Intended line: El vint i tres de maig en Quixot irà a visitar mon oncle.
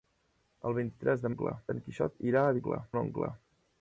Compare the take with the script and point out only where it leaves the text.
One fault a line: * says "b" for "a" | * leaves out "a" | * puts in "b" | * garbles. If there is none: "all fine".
* says "oncle" for "maig"
* says "oncle" for "visitar"